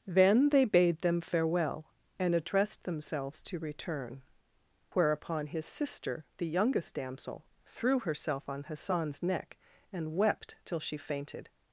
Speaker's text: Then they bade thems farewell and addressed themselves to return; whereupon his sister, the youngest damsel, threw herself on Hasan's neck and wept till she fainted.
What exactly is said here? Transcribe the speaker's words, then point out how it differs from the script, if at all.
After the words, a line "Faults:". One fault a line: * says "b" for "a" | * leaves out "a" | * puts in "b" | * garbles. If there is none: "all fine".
Then they bade them farewell and addressed themselves to return; whereupon his sister, the youngest damsel, threw herself on Hasan's neck and wept till she fainted.
Faults:
* says "them" for "thems"